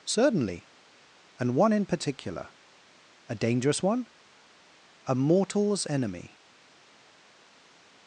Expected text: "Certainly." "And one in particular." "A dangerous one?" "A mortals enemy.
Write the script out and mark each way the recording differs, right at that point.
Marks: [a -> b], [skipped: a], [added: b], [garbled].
"Certainly." "And one in particular." "A dangerous one?" "A mortals enemy.